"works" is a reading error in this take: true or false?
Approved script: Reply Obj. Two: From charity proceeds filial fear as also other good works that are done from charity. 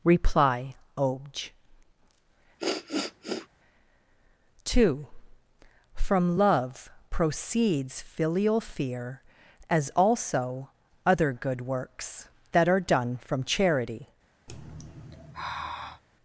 false